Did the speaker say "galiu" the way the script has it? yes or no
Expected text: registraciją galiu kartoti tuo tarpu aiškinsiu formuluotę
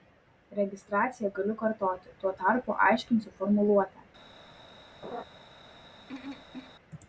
yes